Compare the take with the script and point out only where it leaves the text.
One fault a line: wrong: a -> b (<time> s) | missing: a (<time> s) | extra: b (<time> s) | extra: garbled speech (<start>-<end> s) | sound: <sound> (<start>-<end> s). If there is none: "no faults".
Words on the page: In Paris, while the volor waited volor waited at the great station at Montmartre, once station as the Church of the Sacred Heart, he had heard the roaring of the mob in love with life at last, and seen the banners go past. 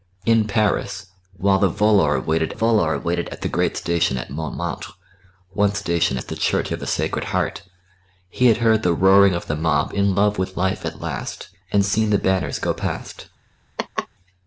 sound: laugh (13.8-14.1 s)